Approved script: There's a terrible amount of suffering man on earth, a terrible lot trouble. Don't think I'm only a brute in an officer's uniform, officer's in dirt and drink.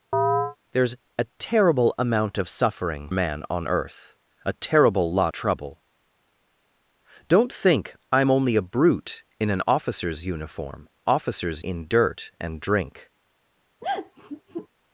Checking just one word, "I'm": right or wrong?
right